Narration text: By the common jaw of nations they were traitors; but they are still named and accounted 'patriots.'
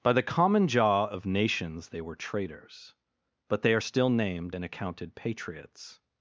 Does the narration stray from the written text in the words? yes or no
no